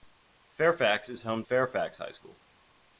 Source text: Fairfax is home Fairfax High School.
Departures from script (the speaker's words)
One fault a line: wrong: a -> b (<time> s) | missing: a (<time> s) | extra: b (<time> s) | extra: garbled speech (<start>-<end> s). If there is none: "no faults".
no faults